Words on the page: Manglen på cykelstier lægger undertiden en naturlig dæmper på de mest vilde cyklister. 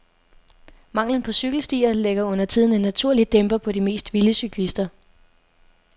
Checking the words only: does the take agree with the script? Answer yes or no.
yes